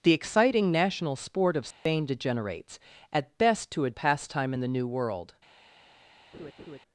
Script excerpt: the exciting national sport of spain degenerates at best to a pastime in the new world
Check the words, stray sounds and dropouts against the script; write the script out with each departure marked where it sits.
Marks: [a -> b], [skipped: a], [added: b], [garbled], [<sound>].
the exciting national sport of spain [dropout] degenerates at best to a pastime in the new world [laugh]